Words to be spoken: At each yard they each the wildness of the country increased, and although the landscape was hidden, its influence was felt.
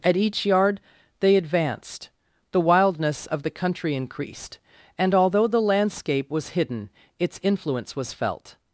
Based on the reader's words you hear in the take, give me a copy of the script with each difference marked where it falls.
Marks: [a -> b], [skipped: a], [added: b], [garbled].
At each yard they [each -> advanced] the wildness of the country increased, and although the landscape was hidden, its influence was felt.